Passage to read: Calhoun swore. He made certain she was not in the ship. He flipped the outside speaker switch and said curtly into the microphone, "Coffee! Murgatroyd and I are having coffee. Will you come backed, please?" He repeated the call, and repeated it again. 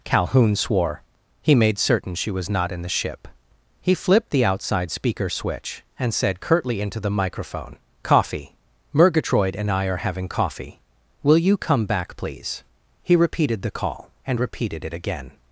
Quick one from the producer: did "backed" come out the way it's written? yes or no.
no